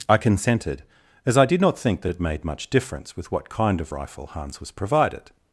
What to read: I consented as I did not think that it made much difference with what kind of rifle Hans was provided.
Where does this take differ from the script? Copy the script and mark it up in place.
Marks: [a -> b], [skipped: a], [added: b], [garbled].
I consented as I did not think that it made much difference with what kind of rifle Hans was provided.